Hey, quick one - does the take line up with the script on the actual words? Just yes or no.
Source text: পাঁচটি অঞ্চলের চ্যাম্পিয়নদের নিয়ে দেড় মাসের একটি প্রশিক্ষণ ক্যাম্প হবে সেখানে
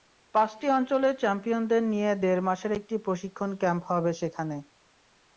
yes